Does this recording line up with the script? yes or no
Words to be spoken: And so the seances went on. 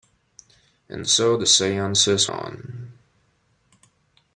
no